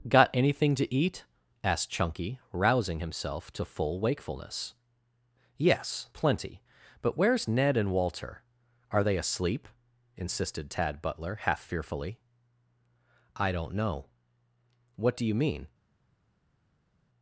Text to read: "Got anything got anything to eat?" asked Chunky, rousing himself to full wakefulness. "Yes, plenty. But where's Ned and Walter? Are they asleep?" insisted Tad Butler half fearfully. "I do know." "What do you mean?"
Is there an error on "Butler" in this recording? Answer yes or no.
no